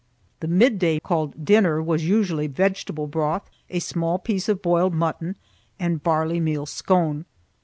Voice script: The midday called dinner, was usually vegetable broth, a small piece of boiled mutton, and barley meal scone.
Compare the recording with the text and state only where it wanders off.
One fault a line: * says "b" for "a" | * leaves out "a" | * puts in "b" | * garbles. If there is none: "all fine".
all fine